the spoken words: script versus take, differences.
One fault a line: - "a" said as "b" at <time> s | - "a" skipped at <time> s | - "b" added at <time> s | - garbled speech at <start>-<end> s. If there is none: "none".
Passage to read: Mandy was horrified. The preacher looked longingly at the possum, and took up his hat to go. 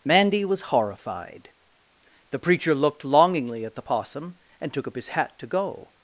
none